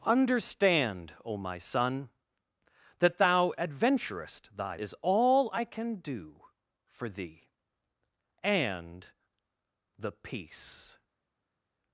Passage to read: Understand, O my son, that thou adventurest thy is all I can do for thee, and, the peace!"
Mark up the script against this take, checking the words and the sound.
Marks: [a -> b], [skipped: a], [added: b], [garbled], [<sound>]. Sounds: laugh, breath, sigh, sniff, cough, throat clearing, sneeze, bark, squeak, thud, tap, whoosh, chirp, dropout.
Understand, O my son, that thou adventurest thy is all I can do for thee, and, the peace!"